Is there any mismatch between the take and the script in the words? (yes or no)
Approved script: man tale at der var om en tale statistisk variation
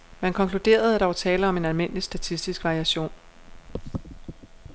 yes